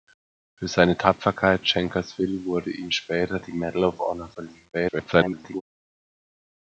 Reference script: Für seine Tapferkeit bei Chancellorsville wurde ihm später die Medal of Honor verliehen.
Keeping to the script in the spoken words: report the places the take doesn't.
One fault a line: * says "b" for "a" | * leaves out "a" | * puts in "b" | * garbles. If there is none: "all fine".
* leaves out "bei"
* garbles